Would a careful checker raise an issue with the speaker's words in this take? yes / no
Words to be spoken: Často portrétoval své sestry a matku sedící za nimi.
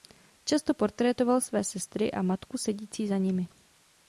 no